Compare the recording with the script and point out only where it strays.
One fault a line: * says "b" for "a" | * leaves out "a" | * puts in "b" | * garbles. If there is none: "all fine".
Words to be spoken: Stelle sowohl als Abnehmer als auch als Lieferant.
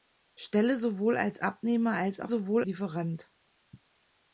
* says "sowohl" for "als"